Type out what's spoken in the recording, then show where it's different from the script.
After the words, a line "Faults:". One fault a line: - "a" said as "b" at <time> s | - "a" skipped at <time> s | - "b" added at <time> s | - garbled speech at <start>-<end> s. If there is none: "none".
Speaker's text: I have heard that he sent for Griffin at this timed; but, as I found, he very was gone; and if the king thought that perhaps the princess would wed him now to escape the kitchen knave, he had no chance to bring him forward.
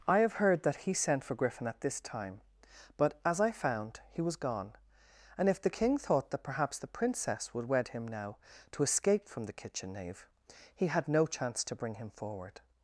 I have heard that he sent for Griffin at this time; but, as I found, he was gone; and if the king thought that perhaps the princess would wed him now to escape from the kitchen knave, he had no chance to bring him forward.
Faults:
- "timed" said as "time" at 2.0 s
- "very" skipped at 4.2 s
- "from" added at 9.3 s